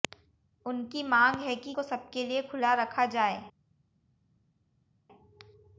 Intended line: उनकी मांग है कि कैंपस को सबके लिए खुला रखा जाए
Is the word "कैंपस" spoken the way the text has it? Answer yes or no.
no